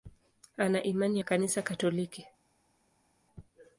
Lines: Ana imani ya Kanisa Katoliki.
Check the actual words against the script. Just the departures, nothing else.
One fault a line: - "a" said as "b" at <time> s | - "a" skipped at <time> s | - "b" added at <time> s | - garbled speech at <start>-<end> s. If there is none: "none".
none